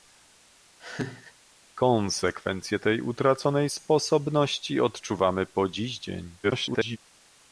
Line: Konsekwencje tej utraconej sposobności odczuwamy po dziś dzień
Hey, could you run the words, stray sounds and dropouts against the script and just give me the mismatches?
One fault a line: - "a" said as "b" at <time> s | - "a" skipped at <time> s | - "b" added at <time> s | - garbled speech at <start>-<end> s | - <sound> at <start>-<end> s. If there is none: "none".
- laugh at 0.8-1.3 s
- garbled speech at 6.4-7.0 s